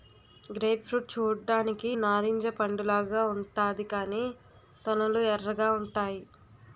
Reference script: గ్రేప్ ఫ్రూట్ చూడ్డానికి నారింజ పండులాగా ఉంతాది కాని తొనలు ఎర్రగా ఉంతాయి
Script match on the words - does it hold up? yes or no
yes